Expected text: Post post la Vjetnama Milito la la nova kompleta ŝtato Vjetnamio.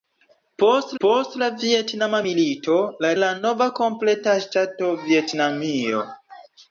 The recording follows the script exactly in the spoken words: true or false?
true